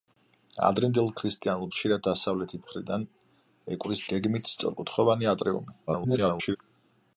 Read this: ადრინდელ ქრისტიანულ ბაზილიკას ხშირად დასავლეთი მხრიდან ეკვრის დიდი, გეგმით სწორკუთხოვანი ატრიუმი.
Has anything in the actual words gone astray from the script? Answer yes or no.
yes